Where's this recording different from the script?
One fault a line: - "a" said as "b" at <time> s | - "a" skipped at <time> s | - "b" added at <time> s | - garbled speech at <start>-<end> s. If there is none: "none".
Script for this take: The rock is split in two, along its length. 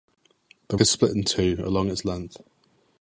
- "rock" skipped at 0.8 s